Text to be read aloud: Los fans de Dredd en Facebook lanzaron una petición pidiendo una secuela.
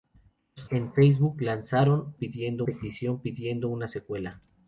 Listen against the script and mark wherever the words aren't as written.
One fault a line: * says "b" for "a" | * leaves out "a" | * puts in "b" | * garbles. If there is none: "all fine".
* leaves out "fans de Dredd"
* says "pidiendo" for "una"